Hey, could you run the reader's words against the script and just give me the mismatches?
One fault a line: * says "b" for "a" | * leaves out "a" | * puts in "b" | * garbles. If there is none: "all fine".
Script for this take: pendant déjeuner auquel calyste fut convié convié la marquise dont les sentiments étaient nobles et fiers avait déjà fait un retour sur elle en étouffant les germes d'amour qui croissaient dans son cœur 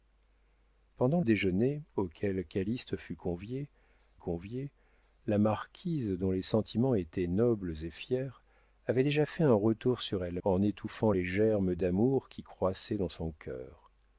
all fine